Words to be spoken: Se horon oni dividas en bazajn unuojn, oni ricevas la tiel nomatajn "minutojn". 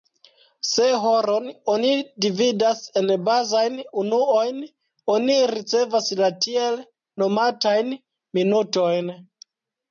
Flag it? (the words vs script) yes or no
no